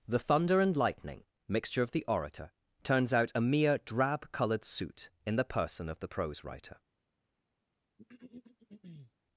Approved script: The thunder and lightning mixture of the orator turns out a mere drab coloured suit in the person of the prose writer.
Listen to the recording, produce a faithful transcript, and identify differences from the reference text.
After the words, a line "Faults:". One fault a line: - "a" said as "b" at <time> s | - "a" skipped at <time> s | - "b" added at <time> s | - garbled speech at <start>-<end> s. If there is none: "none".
The thunder and lightning mixture of the orator turns out a mere drab coloured suit in the person of the prose writer.
Faults:
none